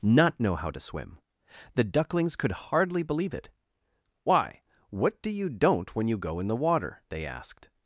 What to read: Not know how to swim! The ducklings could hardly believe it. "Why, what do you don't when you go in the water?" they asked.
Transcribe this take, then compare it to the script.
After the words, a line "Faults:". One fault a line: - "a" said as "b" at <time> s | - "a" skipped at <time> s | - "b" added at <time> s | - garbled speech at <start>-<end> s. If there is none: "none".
Not know how to swim! The ducklings could hardly believe it. "Why, what do you don't when you go in the water?" they asked.
Faults:
none